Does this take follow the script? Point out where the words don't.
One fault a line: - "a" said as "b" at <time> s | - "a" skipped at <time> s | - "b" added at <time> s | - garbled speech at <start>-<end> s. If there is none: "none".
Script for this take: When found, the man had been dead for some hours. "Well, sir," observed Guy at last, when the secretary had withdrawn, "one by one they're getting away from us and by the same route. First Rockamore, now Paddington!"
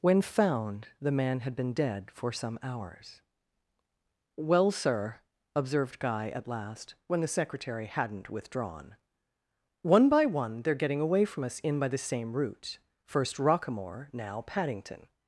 - "had" said as "hadn't" at 7.9 s
- "and" said as "in" at 11.6 s